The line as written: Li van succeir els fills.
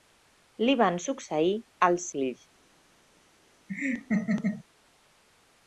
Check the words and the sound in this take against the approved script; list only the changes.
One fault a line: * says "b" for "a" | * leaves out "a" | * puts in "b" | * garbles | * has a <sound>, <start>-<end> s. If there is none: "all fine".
* has a laugh, 3.7-4.6 s